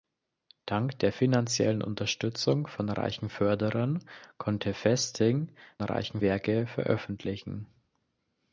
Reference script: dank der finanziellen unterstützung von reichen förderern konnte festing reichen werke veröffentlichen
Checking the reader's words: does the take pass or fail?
pass